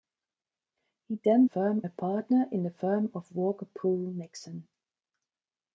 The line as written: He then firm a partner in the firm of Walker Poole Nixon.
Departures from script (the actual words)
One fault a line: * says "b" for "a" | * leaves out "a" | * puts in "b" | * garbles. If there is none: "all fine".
all fine